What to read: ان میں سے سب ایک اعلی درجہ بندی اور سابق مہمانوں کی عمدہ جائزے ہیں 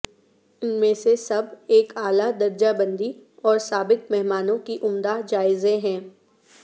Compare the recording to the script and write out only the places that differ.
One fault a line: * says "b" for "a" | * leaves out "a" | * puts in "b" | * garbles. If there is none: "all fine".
all fine